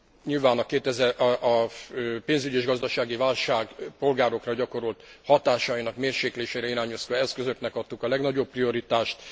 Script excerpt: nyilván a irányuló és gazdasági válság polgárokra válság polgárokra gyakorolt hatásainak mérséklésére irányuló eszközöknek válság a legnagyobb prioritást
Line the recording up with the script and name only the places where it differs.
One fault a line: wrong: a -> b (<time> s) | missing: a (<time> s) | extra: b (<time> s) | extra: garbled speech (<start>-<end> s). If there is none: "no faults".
wrong: irányuló -> pénzügyi (2.2 s)
missing: válság polgárokra (4.5 s)
wrong: válság -> adtuk (7.8 s)